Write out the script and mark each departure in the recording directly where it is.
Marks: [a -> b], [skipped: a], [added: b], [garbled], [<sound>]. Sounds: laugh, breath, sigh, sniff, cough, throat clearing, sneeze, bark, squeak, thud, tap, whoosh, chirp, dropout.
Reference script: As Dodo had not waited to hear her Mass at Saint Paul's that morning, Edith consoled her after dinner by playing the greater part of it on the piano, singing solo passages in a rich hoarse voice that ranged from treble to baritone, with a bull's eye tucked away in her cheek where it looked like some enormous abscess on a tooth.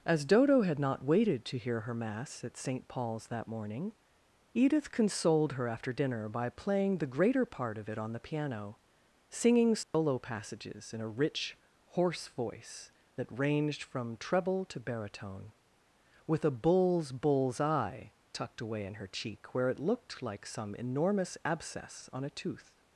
As Dodo had not waited to hear her Mass at Saint Paul's that morning, Edith consoled her after dinner by playing the greater part of it on the piano, singing solo [dropout] passages in a rich hoarse voice that ranged from treble to baritone, with a bull's [added: bull's] eye tucked away in her cheek where it looked like some enormous abscess on a tooth.